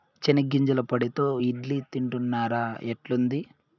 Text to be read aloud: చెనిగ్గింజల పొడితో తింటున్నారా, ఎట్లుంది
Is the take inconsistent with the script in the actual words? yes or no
yes